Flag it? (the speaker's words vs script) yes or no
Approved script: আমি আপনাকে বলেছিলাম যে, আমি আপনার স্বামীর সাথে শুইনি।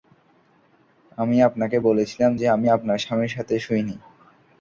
no